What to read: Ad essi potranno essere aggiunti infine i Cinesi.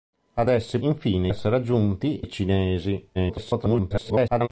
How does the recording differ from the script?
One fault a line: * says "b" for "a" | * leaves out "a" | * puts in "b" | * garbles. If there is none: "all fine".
* says "infine" for "potranno"
* leaves out "infine"
* garbles